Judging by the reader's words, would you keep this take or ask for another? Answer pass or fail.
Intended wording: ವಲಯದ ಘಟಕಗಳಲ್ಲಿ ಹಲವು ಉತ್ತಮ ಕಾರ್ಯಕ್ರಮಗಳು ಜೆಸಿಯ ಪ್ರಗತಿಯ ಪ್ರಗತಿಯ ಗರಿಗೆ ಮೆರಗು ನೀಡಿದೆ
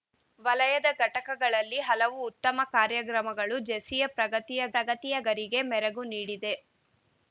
pass